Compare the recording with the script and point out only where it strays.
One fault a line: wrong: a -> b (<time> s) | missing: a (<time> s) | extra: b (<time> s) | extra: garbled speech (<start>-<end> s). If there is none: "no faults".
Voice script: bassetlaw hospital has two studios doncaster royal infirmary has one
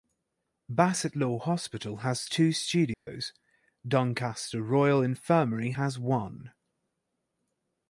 no faults